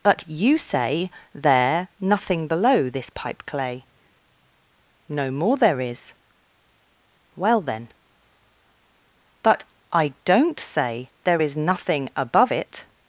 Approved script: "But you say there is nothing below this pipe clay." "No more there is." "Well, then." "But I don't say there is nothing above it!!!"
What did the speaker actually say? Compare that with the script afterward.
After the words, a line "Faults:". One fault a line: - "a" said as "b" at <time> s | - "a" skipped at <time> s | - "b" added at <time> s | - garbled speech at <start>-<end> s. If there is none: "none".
"But you say there nothing below this pipe clay." "No more there is." "Well, then." "But I don't say there is nothing above it!!!"
Faults:
- "is" skipped at 1.9 s